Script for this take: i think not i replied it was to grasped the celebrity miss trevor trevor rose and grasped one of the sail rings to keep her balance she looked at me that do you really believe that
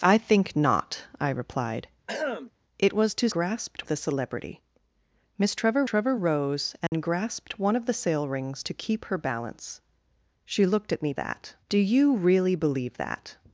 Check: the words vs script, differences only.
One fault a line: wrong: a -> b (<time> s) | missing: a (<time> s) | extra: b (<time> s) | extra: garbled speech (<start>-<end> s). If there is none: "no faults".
no faults